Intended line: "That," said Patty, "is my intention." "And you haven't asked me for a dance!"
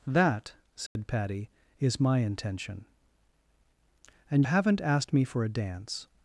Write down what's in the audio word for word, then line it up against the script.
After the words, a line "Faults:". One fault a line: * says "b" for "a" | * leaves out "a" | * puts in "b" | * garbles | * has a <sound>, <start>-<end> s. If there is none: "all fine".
"That," said Patty, "is my intention." "And haven't asked me for a dance!"
Faults:
* has a dropout, 0.9-1.0 s
* leaves out "you"